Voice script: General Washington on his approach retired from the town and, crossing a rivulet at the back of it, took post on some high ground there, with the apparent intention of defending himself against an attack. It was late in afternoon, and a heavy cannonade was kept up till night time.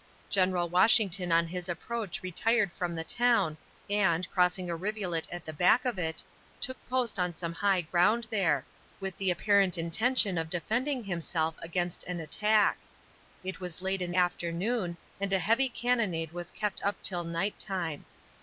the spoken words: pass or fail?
pass